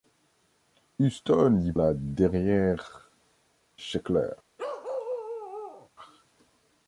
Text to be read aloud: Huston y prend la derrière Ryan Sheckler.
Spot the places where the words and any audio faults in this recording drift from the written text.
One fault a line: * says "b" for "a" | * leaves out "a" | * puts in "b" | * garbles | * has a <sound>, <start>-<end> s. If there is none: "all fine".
* leaves out "prend"
* leaves out "Ryan"
* has a bark, 4.6-5.9 s